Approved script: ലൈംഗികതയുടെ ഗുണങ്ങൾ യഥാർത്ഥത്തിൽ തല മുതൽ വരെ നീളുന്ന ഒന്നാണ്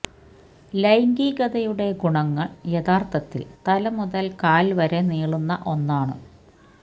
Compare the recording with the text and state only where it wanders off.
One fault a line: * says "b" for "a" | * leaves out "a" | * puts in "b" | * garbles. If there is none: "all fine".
* puts in "കാൽ"